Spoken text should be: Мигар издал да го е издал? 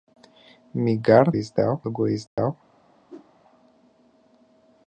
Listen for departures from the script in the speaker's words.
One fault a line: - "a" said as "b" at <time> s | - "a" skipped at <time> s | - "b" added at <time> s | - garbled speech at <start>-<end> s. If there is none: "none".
none